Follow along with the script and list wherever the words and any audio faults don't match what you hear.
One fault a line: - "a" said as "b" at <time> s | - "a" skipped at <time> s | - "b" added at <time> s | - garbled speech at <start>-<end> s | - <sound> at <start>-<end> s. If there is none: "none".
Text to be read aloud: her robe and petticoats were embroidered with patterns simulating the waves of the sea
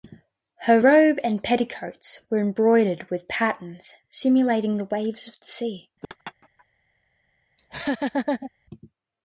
- laugh at 6.0-6.7 s
- laugh at 7.6-8.5 s